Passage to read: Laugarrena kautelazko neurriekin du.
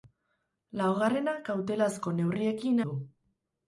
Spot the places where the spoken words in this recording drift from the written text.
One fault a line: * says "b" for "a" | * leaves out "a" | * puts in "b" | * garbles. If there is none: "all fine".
all fine